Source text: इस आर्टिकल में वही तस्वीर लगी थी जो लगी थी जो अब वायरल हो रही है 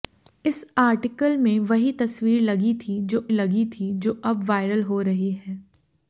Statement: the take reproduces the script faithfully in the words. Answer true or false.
true